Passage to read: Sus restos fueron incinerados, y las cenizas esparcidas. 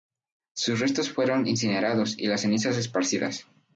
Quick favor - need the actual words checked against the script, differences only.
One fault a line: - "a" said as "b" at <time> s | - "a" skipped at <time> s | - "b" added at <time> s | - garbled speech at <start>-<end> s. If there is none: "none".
none